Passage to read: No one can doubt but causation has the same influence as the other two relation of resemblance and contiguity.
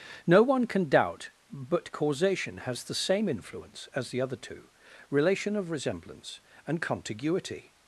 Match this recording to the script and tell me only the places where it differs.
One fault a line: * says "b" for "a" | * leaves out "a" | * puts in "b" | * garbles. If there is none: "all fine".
all fine